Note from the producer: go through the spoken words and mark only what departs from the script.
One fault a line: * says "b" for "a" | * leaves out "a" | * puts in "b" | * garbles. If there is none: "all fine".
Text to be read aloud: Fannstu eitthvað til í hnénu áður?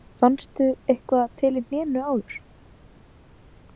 all fine